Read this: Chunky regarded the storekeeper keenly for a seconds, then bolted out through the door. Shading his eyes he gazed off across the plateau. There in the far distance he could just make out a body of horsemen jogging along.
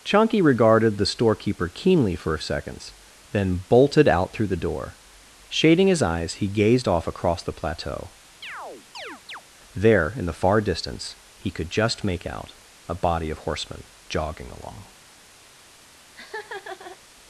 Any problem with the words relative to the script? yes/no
no